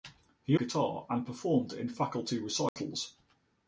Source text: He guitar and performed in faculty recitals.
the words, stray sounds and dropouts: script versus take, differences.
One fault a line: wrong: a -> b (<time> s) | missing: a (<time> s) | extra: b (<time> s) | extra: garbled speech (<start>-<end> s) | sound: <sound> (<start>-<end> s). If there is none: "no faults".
sound: dropout (2.7-2.8 s)